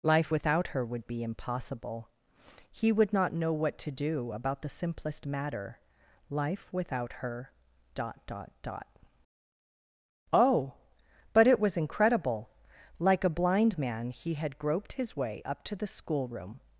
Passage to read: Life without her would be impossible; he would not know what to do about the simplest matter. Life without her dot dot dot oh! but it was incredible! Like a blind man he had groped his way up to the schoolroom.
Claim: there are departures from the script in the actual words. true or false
false